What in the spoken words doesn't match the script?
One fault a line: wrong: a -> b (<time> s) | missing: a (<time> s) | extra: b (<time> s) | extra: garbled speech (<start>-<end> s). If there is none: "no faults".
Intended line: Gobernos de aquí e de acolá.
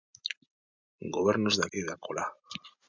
missing: aquí (1.6 s)